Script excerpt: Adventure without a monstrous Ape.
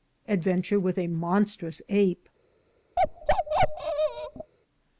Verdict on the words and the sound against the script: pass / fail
fail